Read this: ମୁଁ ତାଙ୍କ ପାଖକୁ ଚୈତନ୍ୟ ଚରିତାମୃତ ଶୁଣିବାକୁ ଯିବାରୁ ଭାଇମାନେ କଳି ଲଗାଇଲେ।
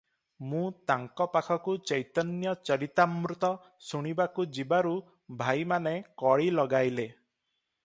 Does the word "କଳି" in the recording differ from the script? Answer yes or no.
no